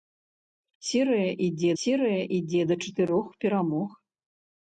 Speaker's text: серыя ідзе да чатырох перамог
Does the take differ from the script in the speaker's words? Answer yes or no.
yes